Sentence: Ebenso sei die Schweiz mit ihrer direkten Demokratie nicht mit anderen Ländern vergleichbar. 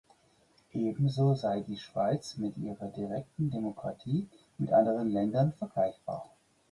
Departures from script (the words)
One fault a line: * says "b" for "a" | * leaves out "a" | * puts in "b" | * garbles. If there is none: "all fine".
* leaves out "nicht"